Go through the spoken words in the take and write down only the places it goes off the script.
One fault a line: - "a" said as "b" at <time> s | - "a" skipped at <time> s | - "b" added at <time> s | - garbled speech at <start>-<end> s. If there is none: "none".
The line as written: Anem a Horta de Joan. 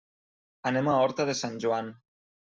- "Sant" added at 1.4 s